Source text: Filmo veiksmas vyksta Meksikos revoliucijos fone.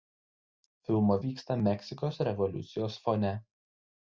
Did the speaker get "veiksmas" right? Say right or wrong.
wrong